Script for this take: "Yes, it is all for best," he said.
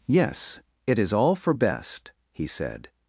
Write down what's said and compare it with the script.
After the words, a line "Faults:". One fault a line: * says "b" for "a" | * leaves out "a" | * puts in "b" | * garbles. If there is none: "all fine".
"Yes, it is all for best," he said.
Faults:
all fine